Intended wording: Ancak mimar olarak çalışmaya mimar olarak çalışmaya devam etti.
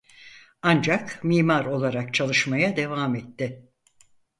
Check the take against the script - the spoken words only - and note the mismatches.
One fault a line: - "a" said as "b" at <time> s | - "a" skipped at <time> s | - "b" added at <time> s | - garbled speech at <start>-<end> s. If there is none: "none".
- "mimar olarak çalışmaya" skipped at 2.8 s